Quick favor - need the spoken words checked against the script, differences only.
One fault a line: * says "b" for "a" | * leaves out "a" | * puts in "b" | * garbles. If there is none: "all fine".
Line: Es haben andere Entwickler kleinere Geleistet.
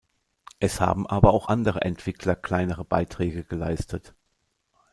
* puts in "aber auch"
* puts in "Beiträge"